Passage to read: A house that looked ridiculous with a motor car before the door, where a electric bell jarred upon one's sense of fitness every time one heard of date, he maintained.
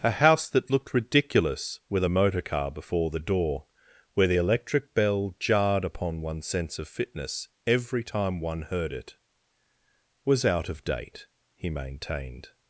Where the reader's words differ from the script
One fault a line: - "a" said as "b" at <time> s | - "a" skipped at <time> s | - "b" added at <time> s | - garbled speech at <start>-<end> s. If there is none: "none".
- "a" said as "the" at 4.3 s
- "it was out" added at 8.9 s